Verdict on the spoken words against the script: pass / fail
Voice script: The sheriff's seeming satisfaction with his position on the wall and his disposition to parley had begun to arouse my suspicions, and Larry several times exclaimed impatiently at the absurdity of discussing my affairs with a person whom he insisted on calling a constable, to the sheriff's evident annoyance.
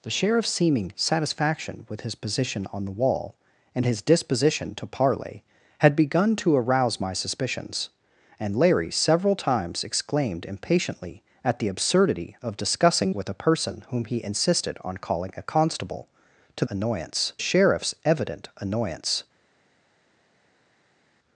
fail